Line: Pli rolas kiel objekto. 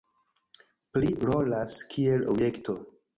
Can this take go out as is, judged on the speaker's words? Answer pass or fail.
pass